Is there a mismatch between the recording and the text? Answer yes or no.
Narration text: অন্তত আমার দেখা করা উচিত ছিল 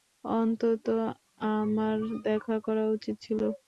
no